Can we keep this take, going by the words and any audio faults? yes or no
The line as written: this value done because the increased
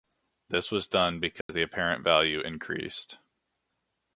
no